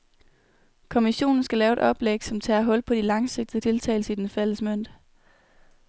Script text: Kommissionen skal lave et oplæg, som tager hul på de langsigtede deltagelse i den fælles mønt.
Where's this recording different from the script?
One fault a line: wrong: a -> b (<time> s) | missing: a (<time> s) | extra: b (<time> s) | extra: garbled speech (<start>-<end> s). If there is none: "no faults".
no faults